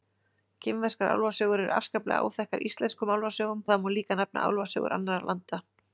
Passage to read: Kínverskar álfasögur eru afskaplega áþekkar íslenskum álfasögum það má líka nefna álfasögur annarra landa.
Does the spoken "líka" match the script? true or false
true